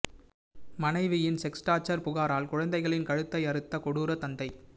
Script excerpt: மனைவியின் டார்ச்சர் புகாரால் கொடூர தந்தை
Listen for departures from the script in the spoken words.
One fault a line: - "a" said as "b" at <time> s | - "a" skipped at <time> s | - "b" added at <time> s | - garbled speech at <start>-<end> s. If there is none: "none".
- "செக்ஸ்" added at 1.4 s
- "குழந்தைகளின் கழுத்தை அறுத்த" added at 2.5 s